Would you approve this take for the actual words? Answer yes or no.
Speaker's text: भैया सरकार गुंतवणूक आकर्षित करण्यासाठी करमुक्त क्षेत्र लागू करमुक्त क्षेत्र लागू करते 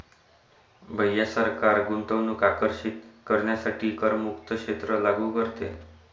no